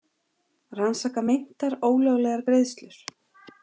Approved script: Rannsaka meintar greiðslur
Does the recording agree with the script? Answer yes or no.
no